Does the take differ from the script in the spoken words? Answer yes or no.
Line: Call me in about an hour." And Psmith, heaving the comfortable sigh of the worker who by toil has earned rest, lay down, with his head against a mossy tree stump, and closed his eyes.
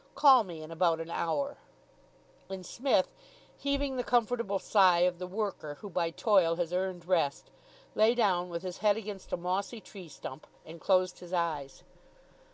no